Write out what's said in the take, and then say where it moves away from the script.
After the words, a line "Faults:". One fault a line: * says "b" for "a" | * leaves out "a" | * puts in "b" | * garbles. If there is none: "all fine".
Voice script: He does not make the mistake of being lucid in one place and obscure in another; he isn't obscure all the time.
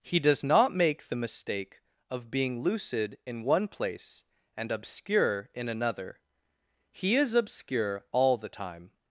He does not make the mistake of being lucid in one place and obscure in another; he is obscure all the time.
Faults:
* says "is" for "isn't"